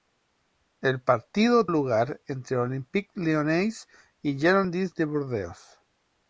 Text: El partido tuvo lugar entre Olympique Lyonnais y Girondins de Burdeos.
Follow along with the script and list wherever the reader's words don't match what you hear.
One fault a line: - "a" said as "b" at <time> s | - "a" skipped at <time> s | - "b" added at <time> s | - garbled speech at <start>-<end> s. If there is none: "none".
- "tuvo" skipped at 1.7 s